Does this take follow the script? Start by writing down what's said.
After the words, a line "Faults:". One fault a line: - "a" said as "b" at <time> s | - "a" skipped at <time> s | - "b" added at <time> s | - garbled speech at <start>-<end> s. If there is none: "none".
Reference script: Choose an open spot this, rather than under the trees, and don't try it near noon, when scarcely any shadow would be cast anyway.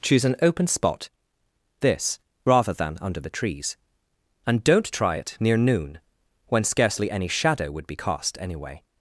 Choose an open spot this, rather than under the trees, and don't try it near noon, when scarcely any shadow would be cast anyway.
Faults:
none